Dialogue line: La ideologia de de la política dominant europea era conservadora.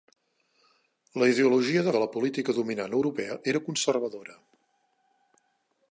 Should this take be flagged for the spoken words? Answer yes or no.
no